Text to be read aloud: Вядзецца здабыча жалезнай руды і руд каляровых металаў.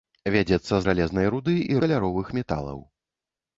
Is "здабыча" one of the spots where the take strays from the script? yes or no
yes